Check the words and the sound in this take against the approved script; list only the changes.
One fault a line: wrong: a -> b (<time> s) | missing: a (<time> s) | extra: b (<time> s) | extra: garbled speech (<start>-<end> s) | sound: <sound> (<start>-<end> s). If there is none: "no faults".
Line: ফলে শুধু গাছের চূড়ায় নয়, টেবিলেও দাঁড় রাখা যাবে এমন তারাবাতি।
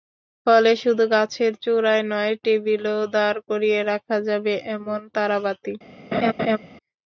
extra: করিয়ে (3.5 s)
sound: laugh (6.1-6.6 s)